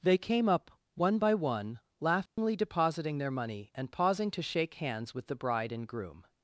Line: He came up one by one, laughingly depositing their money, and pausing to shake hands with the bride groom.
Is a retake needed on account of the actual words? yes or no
yes